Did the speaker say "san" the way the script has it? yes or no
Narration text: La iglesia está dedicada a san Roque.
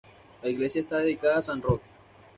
yes